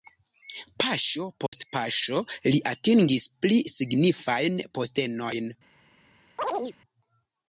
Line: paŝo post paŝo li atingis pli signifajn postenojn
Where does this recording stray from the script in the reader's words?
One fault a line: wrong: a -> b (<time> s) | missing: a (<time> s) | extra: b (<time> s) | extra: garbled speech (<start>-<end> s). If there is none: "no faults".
no faults